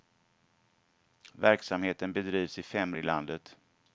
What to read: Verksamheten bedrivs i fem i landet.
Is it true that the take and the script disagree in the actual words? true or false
false